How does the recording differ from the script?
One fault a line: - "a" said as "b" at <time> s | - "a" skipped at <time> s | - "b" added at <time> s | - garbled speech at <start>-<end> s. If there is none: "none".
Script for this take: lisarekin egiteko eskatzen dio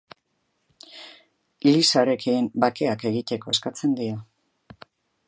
- "bakeak" added at 2.6 s